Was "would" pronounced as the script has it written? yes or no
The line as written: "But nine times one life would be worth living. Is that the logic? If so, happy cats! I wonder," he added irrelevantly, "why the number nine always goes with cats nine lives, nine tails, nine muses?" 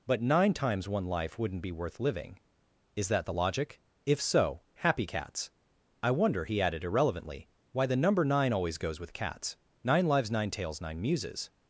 no